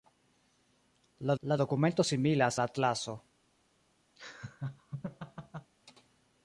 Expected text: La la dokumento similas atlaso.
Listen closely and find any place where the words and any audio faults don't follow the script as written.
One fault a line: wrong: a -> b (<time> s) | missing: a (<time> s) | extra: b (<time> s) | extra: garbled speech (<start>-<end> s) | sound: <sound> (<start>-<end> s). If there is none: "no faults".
sound: laugh (4.2-5.7 s)